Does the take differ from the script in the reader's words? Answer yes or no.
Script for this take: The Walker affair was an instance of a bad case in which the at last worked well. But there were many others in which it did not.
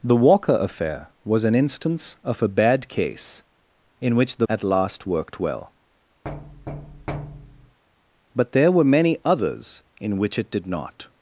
no